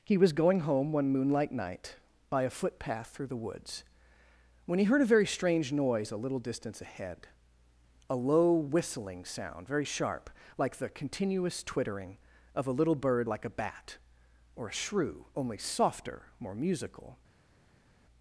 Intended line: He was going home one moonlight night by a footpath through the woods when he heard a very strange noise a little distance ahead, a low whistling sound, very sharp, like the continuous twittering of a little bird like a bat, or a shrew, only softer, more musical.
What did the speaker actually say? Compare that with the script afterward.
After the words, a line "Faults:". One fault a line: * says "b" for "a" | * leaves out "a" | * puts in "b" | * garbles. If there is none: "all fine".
He was going home one moonlight night by a footpath through the woods when he heard a very strange noise a little distance ahead, a low whistling sound, very sharp, like the continuous twittering of a little bird like a bat, or a shrew, only softer, more musical.
Faults:
all fine